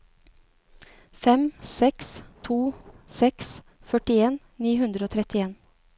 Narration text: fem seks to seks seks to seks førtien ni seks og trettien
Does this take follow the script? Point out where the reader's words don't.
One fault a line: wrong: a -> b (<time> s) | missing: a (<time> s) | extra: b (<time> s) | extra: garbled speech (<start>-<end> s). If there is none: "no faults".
missing: seks to seks (3.5 s)
wrong: seks -> hundre (4.8 s)